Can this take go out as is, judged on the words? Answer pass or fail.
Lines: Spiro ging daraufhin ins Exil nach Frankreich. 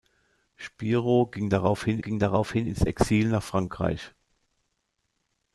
fail